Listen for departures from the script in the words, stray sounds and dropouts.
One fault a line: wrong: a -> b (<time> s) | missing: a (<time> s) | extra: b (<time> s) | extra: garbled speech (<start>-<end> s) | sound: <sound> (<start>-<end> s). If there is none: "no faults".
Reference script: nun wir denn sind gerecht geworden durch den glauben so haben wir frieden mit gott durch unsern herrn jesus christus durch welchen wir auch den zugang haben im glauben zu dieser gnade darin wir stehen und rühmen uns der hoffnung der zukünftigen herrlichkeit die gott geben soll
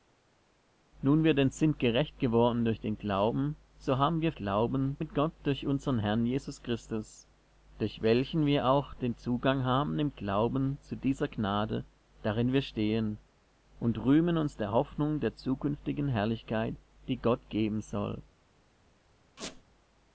wrong: frieden -> glauben (4.3 s)
sound: squeak (19.4-19.6 s)